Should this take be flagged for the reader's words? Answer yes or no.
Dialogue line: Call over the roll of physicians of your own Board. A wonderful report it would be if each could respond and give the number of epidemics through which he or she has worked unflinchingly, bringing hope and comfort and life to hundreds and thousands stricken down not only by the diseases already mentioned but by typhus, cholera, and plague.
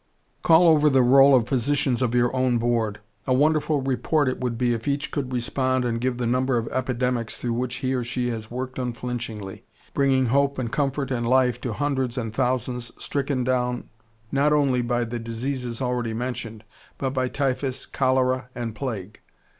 no